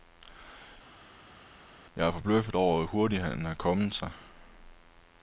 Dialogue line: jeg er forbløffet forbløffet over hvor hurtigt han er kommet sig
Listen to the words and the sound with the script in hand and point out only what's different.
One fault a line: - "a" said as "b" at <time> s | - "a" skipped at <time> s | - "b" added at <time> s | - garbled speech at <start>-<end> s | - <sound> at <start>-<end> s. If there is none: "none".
- "forbløffet" skipped at 2.5 s